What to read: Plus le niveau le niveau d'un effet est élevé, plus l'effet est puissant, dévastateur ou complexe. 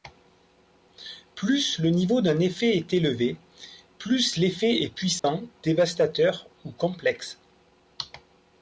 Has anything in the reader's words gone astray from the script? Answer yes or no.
yes